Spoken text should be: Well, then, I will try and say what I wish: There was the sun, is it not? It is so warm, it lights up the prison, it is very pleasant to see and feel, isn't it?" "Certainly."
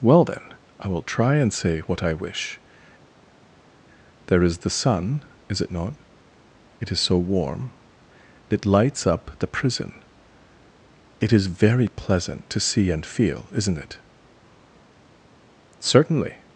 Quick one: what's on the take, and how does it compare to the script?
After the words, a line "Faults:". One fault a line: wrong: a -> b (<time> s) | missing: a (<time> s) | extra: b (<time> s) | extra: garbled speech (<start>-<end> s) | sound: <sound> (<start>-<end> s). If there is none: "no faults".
Well, then, I will try and say what I wish: There is the sun, is it not? It is so warm, it lights up the prison, it is very pleasant to see and feel, isn't it?" "Certainly."
Faults:
wrong: was -> is (4.4 s)